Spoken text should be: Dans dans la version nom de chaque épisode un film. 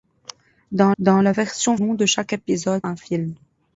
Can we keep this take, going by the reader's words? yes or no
yes